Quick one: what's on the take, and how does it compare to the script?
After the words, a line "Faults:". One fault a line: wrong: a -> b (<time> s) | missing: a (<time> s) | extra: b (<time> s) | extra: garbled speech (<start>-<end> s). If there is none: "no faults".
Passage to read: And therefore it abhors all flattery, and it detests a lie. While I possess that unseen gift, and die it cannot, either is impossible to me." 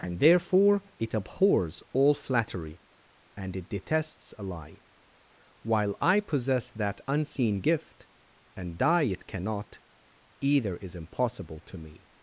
And therefore it abhors all flattery, and it detests a lie. While I possess that unseen gift, and die it cannot, either is impossible to me."
Faults:
no faults